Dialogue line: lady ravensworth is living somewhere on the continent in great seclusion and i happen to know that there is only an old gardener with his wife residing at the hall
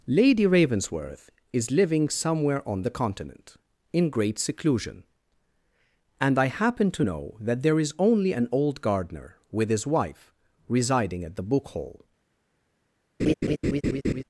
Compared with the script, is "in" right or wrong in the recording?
right